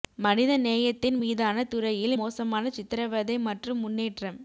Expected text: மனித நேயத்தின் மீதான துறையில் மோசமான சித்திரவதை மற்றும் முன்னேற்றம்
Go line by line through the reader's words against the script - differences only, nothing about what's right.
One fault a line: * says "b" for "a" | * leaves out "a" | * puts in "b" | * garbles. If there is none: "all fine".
all fine